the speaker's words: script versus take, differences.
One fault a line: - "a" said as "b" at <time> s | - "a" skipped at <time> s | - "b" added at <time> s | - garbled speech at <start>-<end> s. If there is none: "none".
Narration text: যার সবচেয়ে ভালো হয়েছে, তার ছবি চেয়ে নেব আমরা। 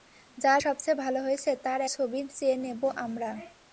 none